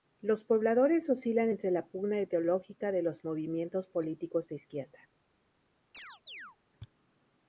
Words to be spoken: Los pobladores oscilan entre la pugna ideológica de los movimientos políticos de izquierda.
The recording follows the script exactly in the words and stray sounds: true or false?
false